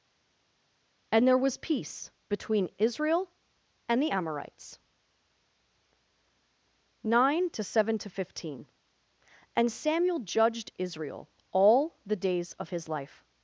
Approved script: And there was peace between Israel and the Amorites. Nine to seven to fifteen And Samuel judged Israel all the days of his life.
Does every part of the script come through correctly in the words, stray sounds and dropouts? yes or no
yes